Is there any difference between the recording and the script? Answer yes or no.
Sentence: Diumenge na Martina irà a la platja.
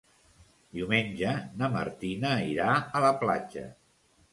no